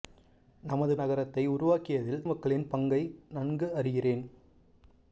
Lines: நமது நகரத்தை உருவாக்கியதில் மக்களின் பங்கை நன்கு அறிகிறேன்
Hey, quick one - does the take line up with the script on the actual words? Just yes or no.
yes